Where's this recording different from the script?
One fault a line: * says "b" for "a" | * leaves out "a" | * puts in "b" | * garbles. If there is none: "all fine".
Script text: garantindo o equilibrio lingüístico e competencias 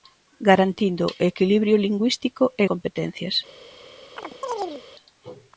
all fine